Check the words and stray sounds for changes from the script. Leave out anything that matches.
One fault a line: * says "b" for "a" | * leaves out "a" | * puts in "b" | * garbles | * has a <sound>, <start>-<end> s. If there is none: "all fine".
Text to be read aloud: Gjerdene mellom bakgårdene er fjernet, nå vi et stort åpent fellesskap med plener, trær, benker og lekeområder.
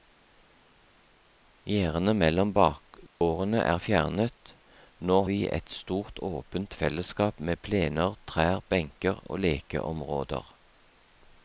* has a dropout, 3.1-3.2 s